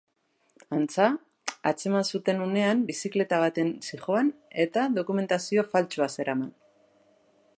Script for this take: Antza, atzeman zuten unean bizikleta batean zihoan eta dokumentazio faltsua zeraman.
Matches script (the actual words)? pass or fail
pass